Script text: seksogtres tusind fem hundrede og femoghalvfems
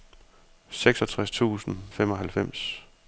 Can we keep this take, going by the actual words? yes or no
no